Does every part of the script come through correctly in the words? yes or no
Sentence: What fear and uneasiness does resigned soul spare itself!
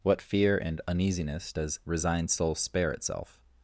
yes